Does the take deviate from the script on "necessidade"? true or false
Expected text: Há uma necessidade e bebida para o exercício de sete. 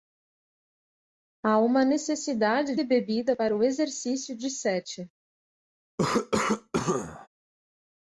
false